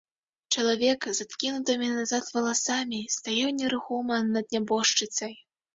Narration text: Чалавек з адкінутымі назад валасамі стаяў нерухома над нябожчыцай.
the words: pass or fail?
pass